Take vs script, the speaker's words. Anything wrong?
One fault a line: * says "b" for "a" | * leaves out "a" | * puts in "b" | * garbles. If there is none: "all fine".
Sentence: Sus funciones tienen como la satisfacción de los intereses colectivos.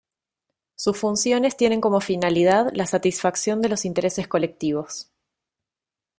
* puts in "finalidad"